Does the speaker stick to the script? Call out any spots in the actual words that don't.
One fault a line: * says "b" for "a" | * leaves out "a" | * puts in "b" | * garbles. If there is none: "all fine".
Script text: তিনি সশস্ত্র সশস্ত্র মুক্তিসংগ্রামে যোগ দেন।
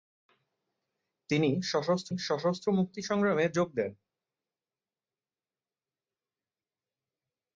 all fine